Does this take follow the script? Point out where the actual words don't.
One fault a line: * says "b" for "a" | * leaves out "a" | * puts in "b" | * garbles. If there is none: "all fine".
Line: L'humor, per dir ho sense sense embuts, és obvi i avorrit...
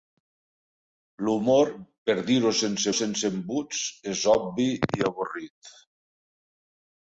all fine